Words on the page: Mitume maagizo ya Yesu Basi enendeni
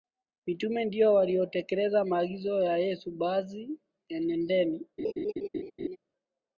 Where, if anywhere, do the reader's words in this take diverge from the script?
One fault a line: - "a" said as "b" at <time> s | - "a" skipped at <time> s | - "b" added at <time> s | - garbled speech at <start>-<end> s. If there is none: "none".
- "ndio waliotekeleza" added at 0.8 s